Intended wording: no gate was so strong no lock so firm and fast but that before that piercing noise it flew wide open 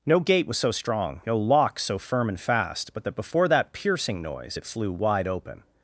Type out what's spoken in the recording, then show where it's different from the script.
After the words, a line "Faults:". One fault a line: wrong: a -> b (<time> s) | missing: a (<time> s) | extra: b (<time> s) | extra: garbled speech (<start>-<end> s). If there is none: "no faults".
no gate was so strong no lock so firm and fast but that before that piercing noise it flew wide open
Faults:
no faults